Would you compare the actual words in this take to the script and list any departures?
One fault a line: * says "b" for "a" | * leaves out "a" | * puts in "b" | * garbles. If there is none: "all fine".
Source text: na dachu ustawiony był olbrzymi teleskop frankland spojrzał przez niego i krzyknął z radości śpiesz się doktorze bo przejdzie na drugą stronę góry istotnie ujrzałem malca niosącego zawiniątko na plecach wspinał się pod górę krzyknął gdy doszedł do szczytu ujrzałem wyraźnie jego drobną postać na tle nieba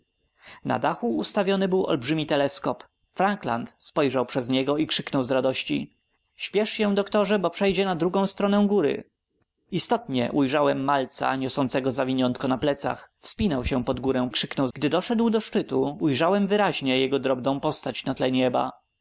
all fine